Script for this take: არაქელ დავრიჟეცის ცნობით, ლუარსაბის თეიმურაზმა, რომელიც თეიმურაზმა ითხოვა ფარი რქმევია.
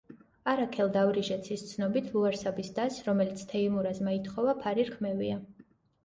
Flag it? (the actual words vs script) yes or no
yes